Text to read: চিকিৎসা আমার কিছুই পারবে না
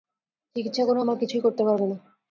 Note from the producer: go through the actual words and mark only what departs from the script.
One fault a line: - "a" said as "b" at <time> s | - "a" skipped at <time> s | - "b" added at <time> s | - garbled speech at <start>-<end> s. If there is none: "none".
- "করে" added at 0.9 s
- "করতে" added at 1.4 s